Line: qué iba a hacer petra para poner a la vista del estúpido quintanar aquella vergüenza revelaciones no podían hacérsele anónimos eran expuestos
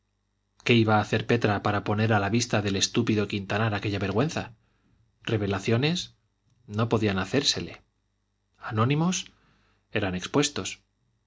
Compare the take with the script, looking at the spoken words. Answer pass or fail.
pass